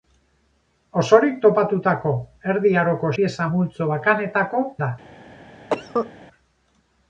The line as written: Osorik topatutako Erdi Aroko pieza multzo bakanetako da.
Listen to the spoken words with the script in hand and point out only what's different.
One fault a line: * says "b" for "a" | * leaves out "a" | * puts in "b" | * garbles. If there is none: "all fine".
all fine